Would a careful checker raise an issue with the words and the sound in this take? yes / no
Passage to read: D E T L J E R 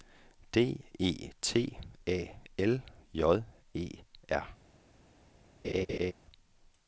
yes